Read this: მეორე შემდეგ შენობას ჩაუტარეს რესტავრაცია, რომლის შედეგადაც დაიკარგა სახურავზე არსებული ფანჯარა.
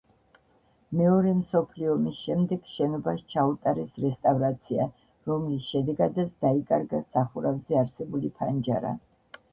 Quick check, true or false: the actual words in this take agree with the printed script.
false